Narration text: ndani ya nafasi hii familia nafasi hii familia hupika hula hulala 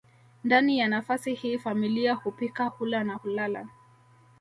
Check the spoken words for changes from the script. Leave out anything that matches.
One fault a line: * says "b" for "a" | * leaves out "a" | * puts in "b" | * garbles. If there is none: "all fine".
* leaves out "nafasi hii familia"
* puts in "na"